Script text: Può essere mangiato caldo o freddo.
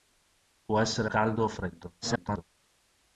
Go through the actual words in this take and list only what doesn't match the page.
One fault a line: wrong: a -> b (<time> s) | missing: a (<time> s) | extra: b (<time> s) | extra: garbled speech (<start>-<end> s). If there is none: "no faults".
missing: mangiato (1.1 s)
extra: garbled speech (2.0-2.4 s)